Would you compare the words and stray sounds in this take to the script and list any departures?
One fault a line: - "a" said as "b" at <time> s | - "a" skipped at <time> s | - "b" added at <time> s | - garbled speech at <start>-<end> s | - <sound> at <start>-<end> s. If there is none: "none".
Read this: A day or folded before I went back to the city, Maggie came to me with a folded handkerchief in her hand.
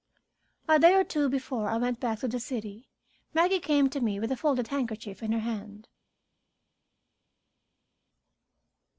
- "folded" said as "two" at 1.0 s